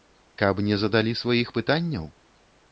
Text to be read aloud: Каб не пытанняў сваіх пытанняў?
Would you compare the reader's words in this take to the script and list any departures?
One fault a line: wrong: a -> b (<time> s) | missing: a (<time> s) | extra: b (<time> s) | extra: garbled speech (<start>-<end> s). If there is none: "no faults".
wrong: пытанняў -> задалі (0.8 s)